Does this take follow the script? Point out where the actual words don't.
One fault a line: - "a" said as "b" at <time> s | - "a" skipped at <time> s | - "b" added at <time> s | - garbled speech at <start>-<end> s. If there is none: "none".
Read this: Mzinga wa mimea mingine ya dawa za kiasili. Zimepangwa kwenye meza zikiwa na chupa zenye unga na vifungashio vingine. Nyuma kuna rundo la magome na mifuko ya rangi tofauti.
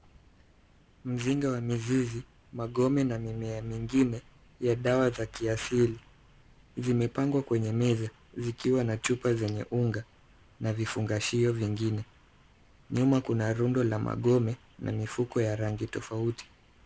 - "mizizi magome na" added at 1.6 s